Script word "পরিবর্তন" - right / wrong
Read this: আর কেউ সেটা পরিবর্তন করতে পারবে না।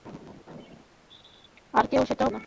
wrong